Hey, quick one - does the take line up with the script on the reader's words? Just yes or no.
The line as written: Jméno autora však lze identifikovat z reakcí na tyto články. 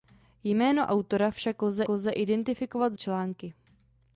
no